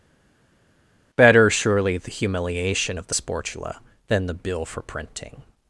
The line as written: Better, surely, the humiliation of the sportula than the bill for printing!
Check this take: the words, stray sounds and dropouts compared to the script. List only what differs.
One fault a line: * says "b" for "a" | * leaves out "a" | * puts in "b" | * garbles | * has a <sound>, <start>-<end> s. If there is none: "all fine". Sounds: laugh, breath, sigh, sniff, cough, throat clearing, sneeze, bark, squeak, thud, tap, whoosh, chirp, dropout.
all fine